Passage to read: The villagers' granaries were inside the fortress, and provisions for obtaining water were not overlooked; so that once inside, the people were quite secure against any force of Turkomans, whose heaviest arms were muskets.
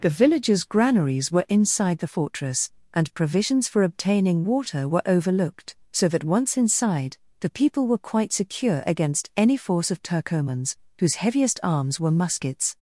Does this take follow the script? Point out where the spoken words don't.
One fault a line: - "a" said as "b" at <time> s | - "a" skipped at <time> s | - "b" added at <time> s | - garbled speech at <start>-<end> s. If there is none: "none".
- "not" skipped at 5.0 s